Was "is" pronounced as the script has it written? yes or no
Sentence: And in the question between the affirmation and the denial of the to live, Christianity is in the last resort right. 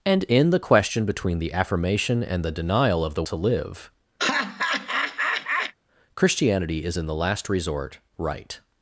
yes